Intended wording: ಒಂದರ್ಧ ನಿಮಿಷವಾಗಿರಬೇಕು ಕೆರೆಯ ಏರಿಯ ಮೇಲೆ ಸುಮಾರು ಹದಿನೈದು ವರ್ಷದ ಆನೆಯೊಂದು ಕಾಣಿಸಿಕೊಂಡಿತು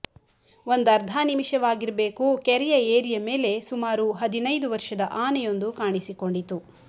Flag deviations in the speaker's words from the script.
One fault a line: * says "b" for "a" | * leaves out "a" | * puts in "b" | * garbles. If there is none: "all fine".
all fine